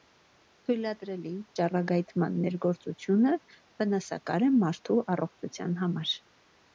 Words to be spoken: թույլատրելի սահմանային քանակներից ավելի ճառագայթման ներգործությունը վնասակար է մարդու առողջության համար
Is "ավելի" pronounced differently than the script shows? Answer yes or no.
yes